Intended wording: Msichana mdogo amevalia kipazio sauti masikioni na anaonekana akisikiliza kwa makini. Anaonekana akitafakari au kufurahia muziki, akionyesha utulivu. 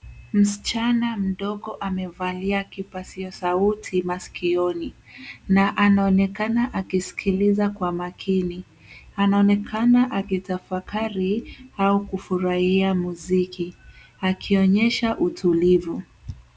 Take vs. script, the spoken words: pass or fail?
pass